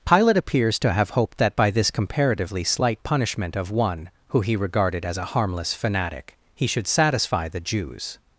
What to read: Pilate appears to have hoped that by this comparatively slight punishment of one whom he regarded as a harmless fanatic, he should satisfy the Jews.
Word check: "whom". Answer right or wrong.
wrong